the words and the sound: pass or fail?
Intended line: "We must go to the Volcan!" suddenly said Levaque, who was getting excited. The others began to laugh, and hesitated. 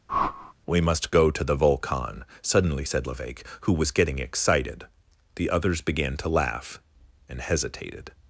fail